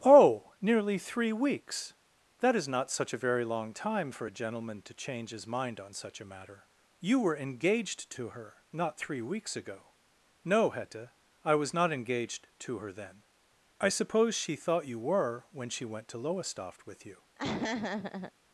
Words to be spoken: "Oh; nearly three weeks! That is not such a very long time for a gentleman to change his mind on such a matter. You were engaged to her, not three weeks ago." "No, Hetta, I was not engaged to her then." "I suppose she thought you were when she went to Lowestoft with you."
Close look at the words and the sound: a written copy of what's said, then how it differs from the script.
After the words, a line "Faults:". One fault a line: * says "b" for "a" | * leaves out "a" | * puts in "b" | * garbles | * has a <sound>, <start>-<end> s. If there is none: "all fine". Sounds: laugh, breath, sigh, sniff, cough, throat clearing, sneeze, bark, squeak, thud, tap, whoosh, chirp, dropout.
"Oh; nearly three weeks! That is not such a very long time for a gentleman to change his mind on such a matter. You were engaged to her, not three weeks ago." "No, Hetta, I was not engaged to her then." "I suppose she thought you were when she went to Lowestoft with you."
Faults:
* has a laugh, 17.4-18.3 s